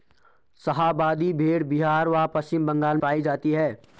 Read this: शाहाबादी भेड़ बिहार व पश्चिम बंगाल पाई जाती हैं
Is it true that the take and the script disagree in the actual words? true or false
false